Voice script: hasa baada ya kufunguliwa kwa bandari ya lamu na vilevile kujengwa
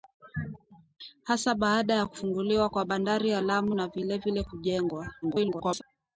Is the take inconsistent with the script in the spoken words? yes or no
yes